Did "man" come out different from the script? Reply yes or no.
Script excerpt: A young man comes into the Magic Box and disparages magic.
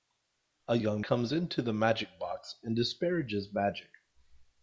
yes